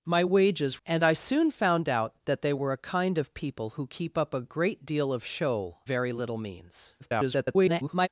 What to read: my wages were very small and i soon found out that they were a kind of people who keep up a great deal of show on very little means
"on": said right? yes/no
no